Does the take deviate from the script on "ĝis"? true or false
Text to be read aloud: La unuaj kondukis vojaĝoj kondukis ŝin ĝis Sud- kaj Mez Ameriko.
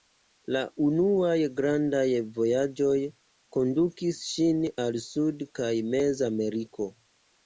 true